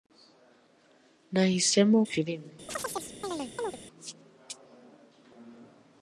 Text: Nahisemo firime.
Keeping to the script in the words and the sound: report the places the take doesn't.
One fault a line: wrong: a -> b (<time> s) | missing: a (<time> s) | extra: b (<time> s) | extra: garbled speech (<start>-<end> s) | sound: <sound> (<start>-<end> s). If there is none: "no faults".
sound: chirp (2.7-3.8 s)